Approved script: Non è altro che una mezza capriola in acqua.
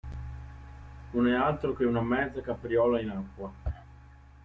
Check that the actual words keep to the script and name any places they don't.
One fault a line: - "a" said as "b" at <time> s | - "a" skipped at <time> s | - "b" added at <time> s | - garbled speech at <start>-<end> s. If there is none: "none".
none